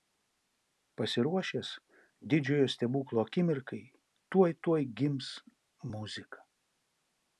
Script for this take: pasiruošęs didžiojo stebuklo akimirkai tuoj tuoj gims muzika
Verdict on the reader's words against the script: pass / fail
pass